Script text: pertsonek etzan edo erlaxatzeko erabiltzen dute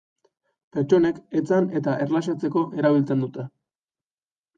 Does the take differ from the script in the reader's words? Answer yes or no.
yes